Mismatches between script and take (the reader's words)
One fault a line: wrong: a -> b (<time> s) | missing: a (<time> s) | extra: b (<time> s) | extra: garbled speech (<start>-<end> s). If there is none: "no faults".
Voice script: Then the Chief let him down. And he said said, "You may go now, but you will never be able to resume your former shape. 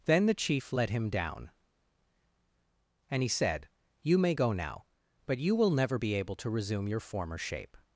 missing: said (3.7 s)